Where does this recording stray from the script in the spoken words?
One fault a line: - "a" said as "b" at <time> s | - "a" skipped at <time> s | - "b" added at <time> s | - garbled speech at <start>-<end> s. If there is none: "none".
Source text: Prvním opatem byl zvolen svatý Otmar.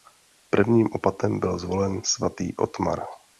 none